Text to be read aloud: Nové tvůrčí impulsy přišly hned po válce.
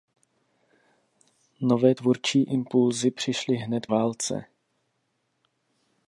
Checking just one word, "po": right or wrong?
wrong